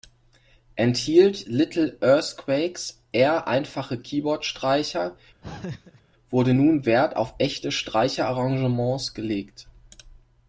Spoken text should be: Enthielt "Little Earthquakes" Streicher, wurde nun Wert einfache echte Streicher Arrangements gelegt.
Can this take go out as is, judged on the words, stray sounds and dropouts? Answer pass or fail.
fail